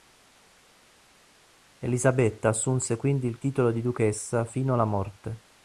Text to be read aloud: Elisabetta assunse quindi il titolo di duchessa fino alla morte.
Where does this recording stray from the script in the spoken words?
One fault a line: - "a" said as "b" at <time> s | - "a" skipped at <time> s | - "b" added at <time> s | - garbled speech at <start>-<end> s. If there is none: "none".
none